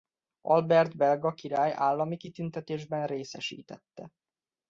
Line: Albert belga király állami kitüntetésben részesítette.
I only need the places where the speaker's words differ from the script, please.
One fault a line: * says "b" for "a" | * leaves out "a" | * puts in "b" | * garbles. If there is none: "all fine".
all fine